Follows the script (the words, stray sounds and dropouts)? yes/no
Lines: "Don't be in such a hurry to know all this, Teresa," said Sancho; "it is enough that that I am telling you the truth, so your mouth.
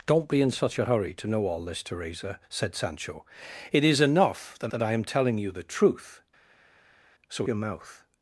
yes